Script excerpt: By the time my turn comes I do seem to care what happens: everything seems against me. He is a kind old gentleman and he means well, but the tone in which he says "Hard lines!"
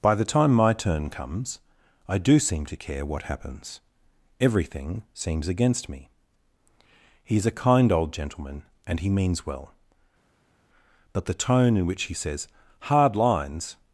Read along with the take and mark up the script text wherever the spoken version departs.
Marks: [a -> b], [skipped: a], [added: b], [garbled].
By the time my turn comes I do seem to care what happens: everything seems against me. He is a kind old gentleman and he means well, but the tone in which he says "Hard lines!"